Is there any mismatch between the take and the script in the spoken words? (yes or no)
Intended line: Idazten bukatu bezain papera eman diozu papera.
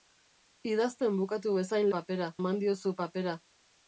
no